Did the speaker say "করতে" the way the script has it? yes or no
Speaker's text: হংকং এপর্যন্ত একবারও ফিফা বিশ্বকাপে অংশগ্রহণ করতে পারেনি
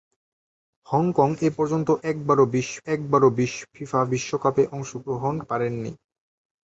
no